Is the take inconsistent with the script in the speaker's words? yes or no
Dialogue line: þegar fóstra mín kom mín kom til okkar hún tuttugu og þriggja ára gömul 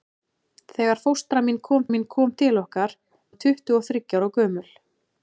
no